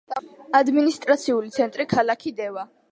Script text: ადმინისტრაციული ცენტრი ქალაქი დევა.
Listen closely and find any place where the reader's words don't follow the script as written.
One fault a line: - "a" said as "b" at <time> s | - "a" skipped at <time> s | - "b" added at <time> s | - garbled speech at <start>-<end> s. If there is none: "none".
none